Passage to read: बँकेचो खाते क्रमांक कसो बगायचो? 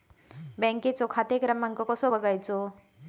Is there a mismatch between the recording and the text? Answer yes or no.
no